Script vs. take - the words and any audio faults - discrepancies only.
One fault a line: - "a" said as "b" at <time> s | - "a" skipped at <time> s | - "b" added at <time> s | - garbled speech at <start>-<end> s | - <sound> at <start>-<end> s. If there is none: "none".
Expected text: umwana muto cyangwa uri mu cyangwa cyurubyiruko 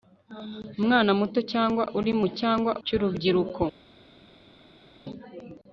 none